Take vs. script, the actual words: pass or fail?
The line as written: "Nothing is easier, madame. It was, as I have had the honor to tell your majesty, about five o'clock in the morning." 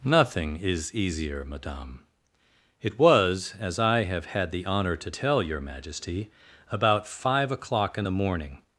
pass